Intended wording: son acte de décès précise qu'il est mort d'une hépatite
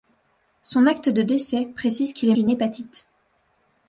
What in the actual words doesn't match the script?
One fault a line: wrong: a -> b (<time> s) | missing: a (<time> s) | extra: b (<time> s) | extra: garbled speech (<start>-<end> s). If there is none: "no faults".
missing: mort (2.4 s)